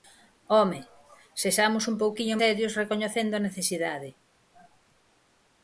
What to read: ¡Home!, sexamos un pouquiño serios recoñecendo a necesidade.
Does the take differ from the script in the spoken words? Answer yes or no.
no